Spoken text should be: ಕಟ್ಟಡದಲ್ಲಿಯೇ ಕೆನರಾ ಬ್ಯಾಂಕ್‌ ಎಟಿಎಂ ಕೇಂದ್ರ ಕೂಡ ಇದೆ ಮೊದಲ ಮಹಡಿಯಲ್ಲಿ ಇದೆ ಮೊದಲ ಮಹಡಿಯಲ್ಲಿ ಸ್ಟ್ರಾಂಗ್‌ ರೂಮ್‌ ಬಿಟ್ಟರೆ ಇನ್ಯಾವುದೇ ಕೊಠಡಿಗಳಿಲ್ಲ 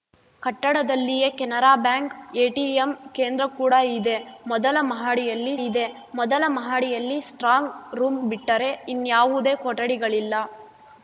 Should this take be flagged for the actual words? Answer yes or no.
no